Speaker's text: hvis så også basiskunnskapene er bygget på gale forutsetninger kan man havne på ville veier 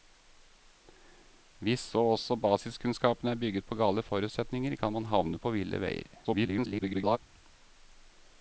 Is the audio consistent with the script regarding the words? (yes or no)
no